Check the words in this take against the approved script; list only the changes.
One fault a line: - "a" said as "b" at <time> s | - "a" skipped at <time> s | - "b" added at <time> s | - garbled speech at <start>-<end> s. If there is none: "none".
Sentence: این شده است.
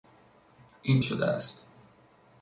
none